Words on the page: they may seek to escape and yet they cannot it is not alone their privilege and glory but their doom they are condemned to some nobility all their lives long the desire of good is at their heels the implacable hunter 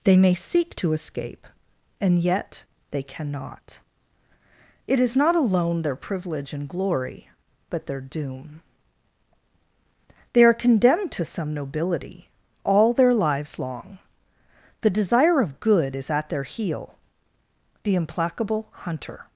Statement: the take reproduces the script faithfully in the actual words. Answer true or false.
false